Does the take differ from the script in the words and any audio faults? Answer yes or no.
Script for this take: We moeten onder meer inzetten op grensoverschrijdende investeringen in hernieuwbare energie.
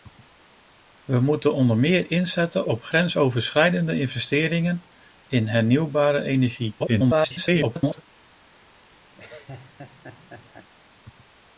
yes